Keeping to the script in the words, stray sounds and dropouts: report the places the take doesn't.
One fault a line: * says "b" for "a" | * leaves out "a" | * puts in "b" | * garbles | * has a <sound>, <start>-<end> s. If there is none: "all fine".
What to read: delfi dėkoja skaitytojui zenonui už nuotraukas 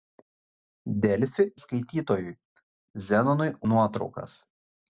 * leaves out "dėkoja"
* leaves out "už"